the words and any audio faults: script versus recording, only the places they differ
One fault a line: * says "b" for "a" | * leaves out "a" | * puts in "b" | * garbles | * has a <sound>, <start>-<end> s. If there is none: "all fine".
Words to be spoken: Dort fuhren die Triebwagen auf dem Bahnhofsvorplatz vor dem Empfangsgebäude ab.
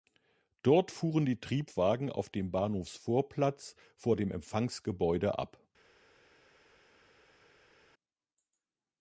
all fine